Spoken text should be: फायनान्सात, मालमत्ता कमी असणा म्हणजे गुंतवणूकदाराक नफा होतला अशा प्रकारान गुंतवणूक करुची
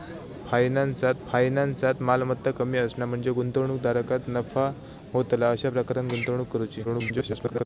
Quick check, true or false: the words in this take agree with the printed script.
false